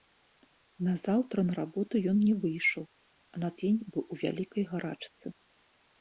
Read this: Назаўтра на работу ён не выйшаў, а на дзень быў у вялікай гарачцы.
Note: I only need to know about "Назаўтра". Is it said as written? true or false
true